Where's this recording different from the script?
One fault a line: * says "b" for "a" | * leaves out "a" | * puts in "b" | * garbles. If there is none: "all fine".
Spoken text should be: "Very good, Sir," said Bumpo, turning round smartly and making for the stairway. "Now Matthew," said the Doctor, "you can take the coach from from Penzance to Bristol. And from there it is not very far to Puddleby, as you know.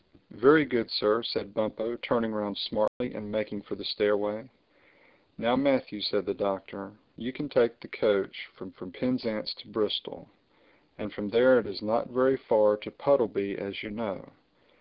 all fine